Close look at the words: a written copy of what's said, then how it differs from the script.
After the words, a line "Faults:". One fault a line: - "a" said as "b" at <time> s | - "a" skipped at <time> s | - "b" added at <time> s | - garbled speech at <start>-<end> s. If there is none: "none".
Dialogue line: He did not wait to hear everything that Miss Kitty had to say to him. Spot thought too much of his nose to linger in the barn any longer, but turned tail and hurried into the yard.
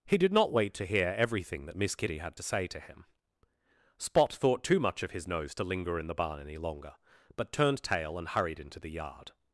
He did not wait to hear everything that Miss Kitty had to say to him. Spot thought too much of his nose to linger in the barn any longer, but turned tail and hurried into the yard.
Faults:
none